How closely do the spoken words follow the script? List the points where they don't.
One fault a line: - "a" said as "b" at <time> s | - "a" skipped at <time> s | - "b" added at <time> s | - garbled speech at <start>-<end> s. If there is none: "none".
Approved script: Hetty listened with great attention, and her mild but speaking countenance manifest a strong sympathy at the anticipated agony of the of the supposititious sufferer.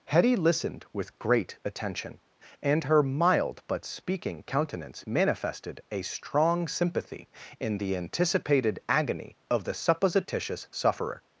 - "manifest" said as "manifested" at 5.0 s
- "at" said as "in" at 7.6 s
- "of the" skipped at 9.8 s